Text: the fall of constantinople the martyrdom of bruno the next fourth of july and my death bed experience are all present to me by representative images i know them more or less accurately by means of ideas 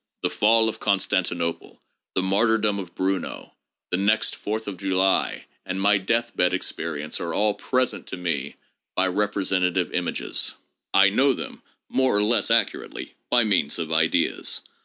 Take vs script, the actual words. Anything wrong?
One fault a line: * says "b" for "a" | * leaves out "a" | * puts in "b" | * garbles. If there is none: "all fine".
all fine